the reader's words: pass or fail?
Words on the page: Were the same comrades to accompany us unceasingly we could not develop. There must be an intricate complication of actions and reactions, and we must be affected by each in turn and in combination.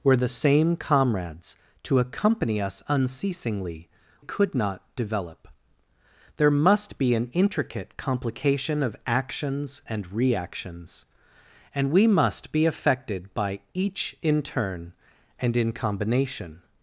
fail